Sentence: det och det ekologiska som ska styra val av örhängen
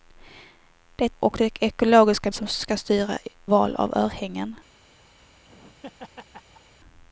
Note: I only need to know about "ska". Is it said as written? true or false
true